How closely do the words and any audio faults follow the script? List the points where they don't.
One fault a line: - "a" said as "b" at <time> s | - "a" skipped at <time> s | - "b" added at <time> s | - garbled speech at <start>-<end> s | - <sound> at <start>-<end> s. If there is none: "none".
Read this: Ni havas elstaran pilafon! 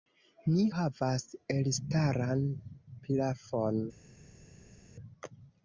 none